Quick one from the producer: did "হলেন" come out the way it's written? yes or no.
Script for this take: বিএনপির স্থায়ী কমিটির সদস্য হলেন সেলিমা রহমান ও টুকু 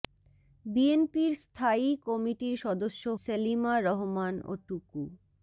no